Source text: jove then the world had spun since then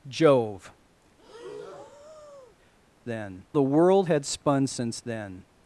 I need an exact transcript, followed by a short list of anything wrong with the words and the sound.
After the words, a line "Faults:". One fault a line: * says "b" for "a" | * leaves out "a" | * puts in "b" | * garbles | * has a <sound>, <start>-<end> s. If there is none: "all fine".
jove then the world had spun since then
Faults:
* has a breath, 1.2-2.6 s